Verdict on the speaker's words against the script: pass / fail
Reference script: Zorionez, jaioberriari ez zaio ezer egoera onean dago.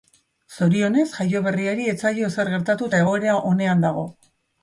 fail